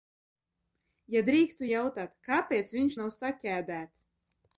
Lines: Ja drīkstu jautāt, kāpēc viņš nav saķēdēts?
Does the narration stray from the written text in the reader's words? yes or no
no